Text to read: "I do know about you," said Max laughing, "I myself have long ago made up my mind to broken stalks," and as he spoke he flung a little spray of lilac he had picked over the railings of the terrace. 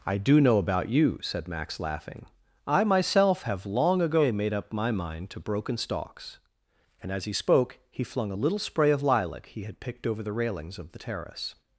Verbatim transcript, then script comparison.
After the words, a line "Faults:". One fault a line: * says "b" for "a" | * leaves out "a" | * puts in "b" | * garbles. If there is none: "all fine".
"I do know about you," said Max laughing, "I myself have long ago made up my mind to broken stalks," and as he spoke he flung a little spray of lilac he had picked over the railings of the terrace.
Faults:
all fine